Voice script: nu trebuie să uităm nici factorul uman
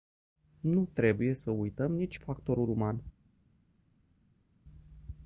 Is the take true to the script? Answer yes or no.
yes